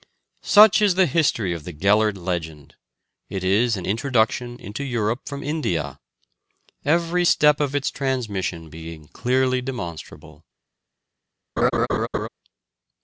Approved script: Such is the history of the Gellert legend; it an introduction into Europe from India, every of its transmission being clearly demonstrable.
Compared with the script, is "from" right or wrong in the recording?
right